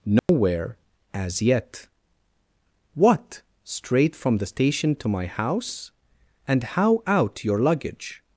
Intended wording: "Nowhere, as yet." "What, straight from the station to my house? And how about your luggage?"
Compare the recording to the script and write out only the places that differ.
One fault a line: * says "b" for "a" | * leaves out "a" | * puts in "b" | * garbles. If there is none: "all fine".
* says "out" for "about"